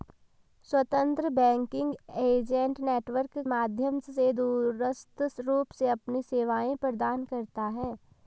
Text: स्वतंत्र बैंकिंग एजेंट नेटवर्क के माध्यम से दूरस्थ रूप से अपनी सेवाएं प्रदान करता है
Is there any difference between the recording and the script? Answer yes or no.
yes